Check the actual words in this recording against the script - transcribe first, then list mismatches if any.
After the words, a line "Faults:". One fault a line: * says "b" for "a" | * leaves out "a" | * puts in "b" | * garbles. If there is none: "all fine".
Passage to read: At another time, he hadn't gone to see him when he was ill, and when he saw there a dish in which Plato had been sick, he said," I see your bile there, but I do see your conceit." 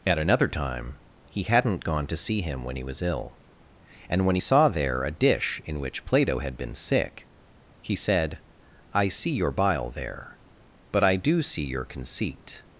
At another time, he hadn't gone to see him when he was ill, and when he saw there a dish in which Plato had been sick, he said," I see your bile there, but I do see your conceit."
Faults:
all fine